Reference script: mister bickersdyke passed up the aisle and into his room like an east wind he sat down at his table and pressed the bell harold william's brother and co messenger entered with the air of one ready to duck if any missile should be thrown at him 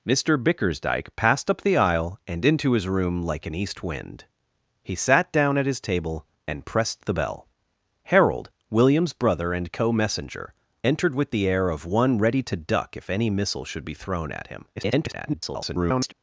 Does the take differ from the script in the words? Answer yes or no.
yes